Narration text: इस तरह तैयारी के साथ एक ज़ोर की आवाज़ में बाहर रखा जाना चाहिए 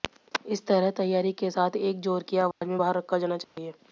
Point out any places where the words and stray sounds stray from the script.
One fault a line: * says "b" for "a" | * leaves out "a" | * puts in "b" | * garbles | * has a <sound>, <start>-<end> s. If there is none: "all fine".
* has a dropout, 2.5-2.6 s
* has a dropout, 3.4-3.6 s